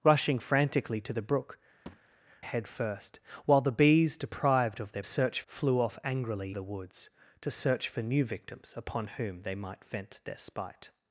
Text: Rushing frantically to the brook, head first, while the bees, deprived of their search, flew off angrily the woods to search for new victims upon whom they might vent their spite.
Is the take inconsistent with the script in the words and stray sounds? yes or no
yes